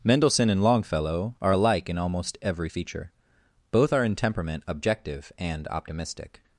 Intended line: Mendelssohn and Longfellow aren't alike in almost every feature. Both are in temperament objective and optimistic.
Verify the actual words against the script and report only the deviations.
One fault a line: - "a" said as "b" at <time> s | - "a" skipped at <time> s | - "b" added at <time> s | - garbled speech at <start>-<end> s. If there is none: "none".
- "aren't" said as "are" at 1.4 s